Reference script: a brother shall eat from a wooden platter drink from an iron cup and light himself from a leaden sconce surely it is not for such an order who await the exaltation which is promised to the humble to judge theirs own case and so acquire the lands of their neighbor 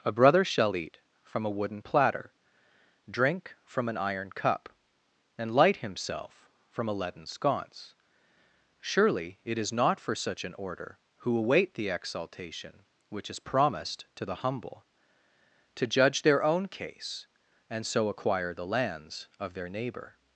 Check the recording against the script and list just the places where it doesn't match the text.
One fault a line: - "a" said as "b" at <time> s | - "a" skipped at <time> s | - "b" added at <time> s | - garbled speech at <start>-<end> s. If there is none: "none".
- "theirs" said as "their" at 16.2 s